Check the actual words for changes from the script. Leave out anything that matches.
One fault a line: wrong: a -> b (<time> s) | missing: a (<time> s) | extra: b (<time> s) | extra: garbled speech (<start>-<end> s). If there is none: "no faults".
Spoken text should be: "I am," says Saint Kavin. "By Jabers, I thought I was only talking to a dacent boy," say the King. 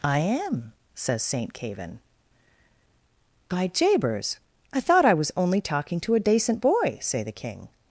no faults